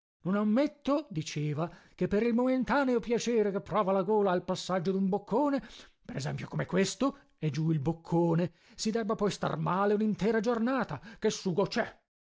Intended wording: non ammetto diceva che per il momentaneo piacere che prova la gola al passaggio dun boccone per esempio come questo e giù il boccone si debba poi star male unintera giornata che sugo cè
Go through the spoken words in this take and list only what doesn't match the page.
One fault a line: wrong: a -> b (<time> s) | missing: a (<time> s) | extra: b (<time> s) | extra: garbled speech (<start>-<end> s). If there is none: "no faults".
no faults